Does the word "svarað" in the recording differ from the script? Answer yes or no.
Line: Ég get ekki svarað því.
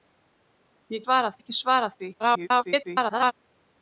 no